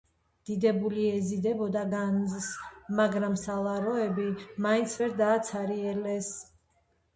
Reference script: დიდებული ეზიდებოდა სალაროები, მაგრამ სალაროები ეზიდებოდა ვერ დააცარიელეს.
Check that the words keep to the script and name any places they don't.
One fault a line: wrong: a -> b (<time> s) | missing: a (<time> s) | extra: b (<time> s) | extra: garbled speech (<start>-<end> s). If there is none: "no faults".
wrong: სალაროები -> განძს (1.9 s)
wrong: ეზიდებოდა -> მაინც (4.7 s)